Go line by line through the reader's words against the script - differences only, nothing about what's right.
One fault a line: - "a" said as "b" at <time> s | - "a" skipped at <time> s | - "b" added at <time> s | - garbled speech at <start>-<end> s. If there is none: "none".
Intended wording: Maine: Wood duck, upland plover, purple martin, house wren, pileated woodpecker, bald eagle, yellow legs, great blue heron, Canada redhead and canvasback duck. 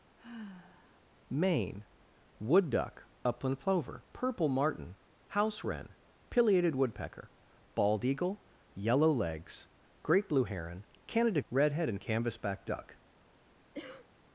none